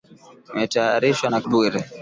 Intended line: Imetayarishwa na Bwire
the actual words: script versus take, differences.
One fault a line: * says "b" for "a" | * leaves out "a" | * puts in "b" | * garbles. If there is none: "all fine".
all fine